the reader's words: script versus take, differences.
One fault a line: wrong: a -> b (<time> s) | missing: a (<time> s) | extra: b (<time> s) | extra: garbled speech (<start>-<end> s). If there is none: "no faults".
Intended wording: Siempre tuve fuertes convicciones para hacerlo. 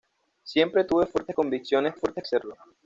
wrong: para -> fuertes (1.9 s)